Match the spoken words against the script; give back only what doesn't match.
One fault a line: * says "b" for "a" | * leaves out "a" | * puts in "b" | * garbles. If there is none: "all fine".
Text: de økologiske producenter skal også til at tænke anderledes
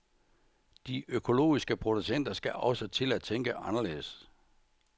all fine